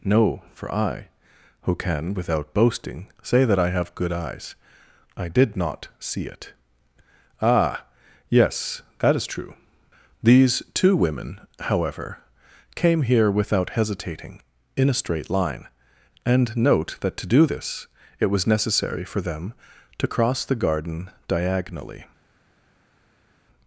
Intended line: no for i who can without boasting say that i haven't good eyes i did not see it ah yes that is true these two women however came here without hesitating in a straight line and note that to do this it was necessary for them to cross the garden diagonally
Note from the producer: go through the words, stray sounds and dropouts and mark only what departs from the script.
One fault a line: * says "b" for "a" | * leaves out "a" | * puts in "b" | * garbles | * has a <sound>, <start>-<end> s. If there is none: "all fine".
* says "have" for "haven't"